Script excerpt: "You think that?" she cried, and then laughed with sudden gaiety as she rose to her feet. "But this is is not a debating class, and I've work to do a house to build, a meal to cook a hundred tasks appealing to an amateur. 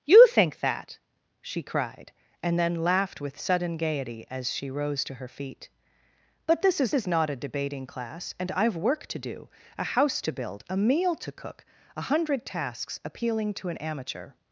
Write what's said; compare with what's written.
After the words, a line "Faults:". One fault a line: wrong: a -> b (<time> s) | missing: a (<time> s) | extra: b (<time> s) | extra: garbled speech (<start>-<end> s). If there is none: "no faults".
"You think that?" she cried, and then laughed with sudden gaiety as she rose to her feet. "But this is is not a debating class, and I've work to do a house to build, a meal to cook a hundred tasks appealing to an amateur.
Faults:
no faults